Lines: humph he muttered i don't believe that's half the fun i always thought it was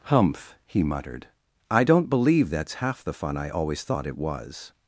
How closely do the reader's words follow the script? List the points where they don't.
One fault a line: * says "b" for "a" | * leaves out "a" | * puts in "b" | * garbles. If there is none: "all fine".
all fine